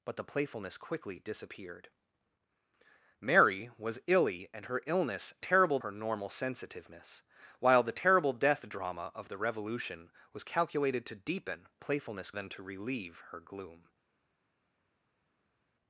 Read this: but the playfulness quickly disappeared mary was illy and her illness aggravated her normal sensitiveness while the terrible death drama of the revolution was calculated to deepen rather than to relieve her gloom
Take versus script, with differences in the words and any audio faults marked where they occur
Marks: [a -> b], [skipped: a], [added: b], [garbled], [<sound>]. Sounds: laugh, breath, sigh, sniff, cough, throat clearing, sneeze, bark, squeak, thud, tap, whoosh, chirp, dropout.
but the playfulness quickly disappeared mary was illy and her illness [aggravated -> terrible] her normal sensitiveness while the terrible death drama of the revolution was calculated to deepen [rather -> playfulness] than to relieve her gloom